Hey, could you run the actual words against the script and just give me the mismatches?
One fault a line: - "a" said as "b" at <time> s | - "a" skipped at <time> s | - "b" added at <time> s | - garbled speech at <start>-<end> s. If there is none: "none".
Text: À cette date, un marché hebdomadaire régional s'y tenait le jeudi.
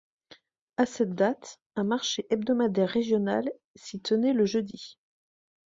none